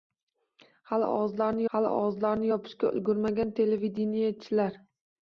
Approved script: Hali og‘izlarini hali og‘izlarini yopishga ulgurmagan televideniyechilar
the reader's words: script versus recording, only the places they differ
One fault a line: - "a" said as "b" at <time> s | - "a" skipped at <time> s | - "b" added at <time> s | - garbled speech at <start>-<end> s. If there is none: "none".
none